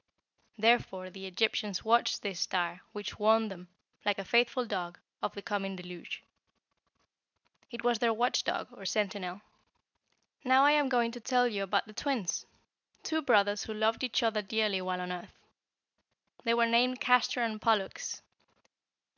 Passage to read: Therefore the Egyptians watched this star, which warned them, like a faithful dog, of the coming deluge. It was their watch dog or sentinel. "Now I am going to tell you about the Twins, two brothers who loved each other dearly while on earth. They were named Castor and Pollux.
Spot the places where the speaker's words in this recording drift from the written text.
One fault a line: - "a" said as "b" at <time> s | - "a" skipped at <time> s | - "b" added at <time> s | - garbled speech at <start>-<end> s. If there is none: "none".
none